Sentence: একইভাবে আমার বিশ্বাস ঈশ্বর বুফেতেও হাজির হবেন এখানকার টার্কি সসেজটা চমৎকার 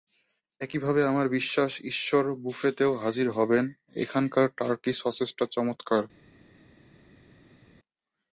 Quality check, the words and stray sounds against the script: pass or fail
pass